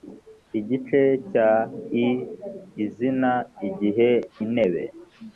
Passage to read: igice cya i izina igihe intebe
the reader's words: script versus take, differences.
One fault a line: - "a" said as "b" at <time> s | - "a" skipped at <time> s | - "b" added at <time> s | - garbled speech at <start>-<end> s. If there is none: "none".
none